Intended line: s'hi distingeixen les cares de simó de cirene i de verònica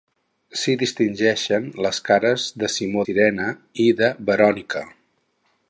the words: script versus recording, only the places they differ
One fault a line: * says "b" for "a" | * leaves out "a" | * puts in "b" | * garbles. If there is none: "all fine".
* leaves out "de"